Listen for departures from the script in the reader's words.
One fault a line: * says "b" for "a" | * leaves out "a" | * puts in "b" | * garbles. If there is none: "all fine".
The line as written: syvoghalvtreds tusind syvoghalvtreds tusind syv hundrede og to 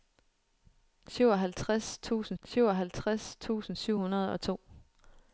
all fine